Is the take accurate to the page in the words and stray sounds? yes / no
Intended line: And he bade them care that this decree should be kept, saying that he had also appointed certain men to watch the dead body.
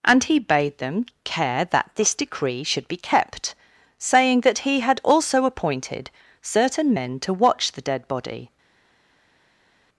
yes